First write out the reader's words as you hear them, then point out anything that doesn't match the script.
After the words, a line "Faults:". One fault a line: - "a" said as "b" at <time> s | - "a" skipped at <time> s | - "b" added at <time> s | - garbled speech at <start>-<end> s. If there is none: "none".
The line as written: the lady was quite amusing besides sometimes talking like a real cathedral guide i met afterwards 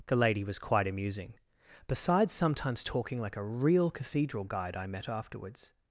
the lady was quite amusing besides sometimes talking like a real cathedral guide i met afterwards
Faults:
none